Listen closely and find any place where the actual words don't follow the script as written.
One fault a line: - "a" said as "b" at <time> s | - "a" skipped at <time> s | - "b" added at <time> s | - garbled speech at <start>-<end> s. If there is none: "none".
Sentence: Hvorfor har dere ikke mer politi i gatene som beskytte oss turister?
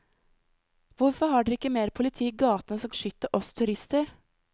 none